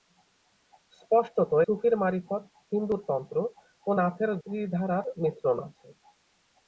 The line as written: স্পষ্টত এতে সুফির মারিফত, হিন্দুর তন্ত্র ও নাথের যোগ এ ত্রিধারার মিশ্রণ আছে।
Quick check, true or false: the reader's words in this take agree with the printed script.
false